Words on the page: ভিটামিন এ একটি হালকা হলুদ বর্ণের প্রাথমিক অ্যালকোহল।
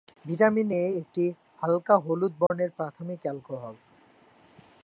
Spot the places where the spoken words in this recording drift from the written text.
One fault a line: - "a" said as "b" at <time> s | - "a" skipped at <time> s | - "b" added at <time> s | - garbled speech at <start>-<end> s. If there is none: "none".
none